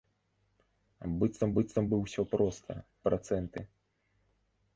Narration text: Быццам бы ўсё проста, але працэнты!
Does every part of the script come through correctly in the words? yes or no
no